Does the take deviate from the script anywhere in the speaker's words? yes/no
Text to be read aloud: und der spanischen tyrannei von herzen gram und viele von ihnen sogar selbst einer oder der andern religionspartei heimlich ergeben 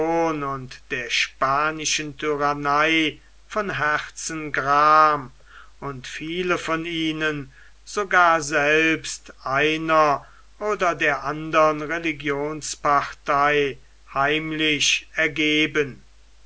no